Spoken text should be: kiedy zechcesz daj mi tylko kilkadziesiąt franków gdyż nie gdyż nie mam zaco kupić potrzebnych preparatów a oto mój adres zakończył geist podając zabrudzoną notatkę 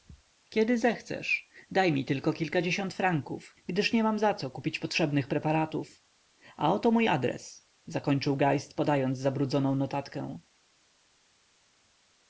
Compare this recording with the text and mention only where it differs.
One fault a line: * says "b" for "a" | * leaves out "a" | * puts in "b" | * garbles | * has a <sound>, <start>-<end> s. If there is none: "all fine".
* leaves out "gdyż nie"